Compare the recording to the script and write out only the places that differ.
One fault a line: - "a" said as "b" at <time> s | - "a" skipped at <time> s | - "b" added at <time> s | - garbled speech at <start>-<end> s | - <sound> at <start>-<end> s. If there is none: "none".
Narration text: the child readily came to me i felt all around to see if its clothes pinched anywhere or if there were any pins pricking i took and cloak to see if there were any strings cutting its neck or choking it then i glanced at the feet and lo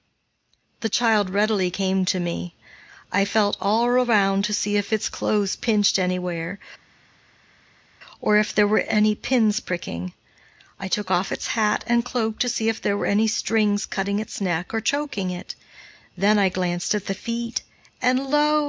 - "off its hat" added at 11.1 s